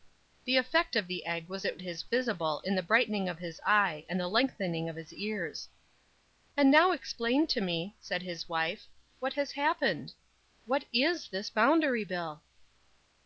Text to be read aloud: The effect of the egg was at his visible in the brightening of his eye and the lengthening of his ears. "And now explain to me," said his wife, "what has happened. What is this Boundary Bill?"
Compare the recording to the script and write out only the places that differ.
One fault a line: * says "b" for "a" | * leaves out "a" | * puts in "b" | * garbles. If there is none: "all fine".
all fine